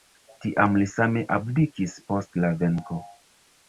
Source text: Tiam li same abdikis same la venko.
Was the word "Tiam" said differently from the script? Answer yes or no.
no